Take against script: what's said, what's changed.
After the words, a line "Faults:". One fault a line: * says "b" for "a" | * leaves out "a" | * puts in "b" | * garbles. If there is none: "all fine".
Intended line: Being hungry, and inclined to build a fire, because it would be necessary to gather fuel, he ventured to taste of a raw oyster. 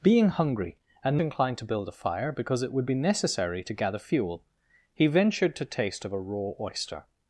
Being hungry, and inclined to build a fire, because it would be necessary to gather fuel, he ventured to taste of a raw oyster.
Faults:
all fine